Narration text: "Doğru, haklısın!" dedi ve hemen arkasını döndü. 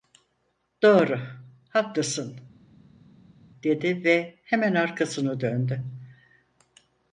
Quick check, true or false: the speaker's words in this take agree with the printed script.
true